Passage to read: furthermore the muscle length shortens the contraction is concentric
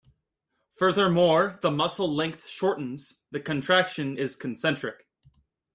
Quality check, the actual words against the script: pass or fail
pass